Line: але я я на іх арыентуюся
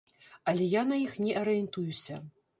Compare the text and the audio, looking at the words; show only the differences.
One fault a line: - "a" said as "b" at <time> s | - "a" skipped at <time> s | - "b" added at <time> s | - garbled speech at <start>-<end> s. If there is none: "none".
- "я" skipped at 0.8 s
- "не" added at 1.2 s